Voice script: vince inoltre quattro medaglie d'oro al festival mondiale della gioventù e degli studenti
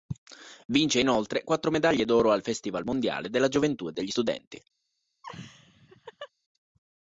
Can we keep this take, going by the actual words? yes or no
yes